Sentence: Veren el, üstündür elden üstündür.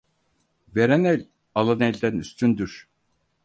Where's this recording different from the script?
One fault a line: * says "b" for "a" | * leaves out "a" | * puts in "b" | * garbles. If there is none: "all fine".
* says "alan" for "üstündür"